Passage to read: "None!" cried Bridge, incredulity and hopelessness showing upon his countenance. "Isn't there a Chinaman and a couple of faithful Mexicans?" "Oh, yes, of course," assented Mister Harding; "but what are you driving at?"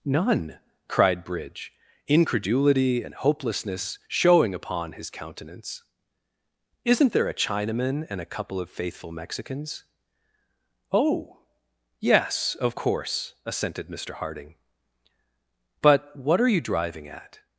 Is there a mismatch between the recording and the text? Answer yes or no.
no